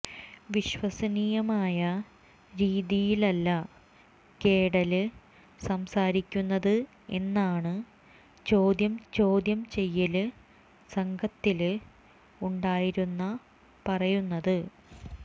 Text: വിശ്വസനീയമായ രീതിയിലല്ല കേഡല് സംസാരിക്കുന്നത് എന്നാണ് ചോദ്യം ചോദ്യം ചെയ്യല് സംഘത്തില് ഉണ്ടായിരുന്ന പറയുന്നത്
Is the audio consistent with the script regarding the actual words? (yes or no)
yes